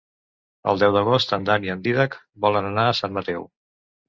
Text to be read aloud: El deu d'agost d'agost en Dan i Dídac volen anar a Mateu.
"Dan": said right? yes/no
yes